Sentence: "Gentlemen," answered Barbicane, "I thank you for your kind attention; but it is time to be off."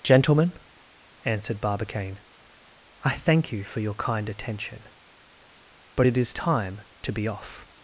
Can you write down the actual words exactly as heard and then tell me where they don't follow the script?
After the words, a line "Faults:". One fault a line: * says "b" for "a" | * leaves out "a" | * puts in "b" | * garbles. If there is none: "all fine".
"Gentlemen," answered Barbicane, "I thank you for your kind attention; but it is time to be off."
Faults:
all fine